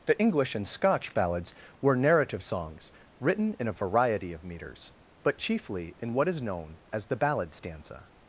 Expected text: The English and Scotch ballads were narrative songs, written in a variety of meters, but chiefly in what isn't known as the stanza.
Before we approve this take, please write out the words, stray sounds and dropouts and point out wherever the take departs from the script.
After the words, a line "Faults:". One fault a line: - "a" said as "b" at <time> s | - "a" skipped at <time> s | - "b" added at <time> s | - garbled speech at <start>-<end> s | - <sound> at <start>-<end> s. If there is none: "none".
The English and Scotch ballads were narrative songs, written in a variety of meters, but chiefly in what is known as the ballad stanza.
Faults:
- "isn't" said as "is" at 6.3 s
- "ballad" added at 7.2 s